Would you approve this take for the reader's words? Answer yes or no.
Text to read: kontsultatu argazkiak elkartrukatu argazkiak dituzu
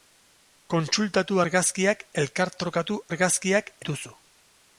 yes